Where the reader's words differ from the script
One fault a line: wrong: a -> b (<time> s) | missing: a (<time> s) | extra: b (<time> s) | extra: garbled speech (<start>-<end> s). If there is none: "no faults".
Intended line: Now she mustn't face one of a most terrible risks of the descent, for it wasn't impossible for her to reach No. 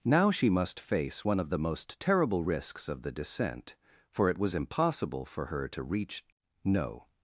wrong: mustn't -> must (0.5 s)
wrong: a -> the (1.5 s)
wrong: wasn't -> was (4.4 s)